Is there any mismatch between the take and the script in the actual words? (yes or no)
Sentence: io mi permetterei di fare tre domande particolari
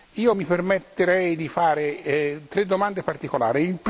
no